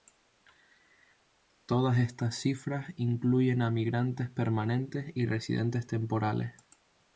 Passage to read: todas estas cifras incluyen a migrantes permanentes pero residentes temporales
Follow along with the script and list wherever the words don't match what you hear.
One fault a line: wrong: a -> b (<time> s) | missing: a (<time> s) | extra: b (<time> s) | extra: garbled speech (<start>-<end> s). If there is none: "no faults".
wrong: pero -> y (5.1 s)